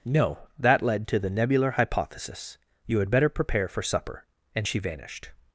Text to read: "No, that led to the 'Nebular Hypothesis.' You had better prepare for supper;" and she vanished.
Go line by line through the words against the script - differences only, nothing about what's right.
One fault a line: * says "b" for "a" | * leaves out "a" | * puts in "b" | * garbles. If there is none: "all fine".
all fine